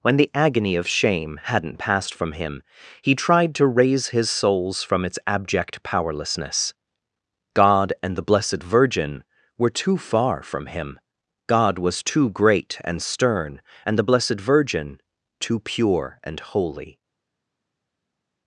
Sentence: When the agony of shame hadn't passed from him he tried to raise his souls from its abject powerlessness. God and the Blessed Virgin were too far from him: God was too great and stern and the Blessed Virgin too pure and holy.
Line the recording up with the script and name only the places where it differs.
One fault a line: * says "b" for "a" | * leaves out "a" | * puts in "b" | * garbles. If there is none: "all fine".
all fine